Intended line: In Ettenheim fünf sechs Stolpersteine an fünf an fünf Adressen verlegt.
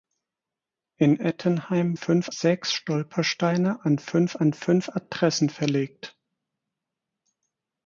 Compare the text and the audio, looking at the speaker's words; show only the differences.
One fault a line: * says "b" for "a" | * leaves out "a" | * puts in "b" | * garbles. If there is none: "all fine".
all fine